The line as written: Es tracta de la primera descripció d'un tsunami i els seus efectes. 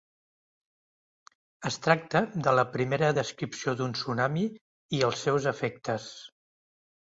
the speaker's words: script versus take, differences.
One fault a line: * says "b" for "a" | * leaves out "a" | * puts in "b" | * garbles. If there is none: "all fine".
all fine